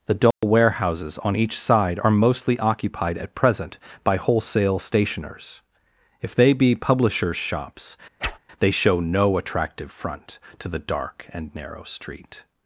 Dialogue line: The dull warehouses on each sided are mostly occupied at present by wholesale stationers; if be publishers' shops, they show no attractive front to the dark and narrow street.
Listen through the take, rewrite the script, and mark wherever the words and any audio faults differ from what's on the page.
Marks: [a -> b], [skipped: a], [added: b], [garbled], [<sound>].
The dull [dropout] warehouses on each [sided -> side] are mostly occupied at present by wholesale stationers; if [added: they] be publishers' shops, [whoosh] they show no attractive front to the dark and narrow street.